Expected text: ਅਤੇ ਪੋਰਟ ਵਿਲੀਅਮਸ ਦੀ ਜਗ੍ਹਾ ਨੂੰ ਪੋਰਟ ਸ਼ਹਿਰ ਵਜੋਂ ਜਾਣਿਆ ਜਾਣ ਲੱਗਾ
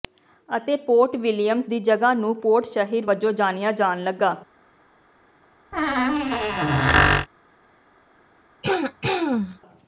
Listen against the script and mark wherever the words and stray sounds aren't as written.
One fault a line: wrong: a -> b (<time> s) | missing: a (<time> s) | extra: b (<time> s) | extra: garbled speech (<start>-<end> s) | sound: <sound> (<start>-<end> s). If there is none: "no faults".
sound: squeak (5.7-7.3 s)
sound: throat clearing (8.6-9.6 s)